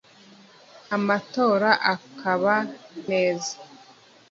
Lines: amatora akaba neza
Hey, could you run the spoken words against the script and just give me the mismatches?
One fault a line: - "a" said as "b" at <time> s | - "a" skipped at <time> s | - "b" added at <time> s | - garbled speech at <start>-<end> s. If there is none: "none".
none